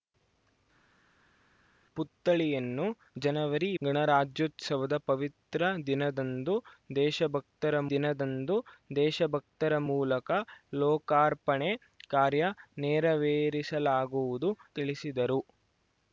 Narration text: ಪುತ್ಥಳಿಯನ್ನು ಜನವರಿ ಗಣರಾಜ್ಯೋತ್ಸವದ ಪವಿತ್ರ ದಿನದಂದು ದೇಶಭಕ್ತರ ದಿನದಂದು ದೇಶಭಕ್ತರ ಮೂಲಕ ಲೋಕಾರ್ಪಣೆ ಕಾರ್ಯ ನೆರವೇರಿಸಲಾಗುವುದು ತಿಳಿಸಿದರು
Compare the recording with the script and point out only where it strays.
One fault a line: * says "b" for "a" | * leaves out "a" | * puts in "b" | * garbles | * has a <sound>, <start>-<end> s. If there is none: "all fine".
all fine